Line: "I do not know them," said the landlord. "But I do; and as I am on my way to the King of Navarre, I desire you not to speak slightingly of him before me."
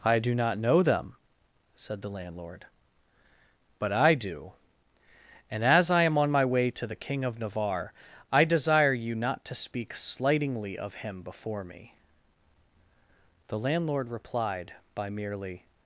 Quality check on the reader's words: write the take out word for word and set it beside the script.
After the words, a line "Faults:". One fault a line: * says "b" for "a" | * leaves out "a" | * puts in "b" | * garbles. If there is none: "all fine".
"I do not know them," said the landlord. "But I do; and as I am on my way to the King of Navarre, I desire you not to speak slightingly of him before me." The landlord replied by merely
Faults:
* puts in "The landlord replied by merely"